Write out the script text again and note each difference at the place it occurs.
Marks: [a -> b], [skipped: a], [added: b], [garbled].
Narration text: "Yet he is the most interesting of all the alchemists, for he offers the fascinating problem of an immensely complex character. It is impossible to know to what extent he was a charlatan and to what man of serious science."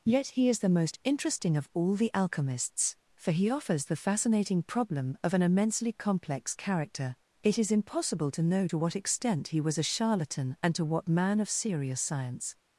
"Yet he is the most interesting of all the alchemists, for he offers the fascinating problem of an immensely complex character. It is impossible to know to what extent he was a charlatan and to what man of serious science."